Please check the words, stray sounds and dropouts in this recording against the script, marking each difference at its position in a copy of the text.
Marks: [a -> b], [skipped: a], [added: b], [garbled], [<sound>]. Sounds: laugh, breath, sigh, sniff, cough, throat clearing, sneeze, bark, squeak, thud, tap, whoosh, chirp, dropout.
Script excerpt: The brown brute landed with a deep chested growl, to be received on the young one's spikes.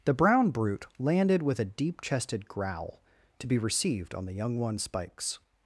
The brown brute landed with a deep chested growl, to be received on the young one's spikes.